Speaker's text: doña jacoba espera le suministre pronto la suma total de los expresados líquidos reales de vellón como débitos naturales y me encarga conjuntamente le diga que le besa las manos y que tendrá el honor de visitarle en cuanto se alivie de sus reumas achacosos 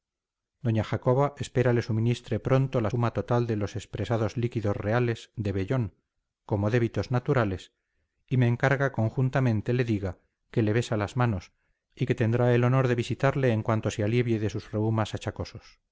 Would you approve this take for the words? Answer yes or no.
yes